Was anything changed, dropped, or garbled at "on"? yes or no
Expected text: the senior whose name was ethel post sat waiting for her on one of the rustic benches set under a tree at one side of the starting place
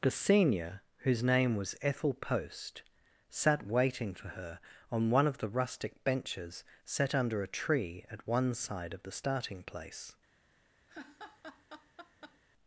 no